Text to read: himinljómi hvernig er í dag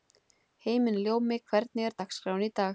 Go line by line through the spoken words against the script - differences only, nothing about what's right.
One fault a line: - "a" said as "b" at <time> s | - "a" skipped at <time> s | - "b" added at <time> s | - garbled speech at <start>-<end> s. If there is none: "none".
- "dagskráin" added at 2.0 s